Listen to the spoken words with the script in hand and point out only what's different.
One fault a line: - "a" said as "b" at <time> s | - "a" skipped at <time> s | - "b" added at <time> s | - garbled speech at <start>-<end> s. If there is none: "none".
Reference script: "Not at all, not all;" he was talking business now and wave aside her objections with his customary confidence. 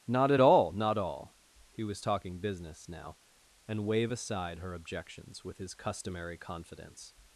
none